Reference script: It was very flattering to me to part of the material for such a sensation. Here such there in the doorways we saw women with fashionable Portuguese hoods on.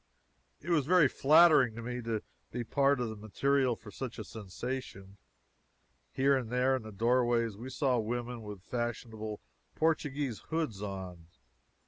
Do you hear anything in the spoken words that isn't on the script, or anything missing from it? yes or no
yes